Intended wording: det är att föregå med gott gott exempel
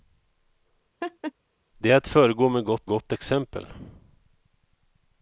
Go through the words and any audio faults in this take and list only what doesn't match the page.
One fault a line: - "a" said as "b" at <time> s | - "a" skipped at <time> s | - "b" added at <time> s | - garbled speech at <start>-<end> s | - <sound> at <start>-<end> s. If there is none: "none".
- laugh at 1.0-1.3 s